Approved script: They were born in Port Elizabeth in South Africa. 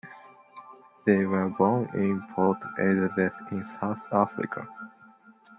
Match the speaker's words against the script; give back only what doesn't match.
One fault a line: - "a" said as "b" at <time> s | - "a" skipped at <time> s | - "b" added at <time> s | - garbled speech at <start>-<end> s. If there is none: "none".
none